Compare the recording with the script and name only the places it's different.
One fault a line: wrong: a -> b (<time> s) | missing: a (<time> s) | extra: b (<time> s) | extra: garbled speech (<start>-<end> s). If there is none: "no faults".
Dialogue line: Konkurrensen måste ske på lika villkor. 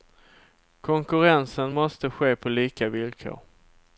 no faults